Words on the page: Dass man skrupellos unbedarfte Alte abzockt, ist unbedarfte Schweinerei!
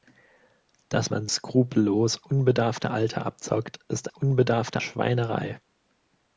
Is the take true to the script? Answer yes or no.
yes